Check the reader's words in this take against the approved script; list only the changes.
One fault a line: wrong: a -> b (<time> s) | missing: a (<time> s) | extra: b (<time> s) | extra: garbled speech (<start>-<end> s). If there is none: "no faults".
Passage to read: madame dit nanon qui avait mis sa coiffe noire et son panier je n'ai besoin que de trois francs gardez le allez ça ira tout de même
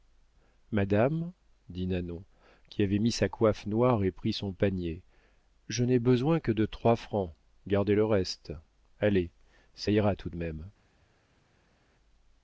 extra: pris (4.1 s)
extra: reste (8.0 s)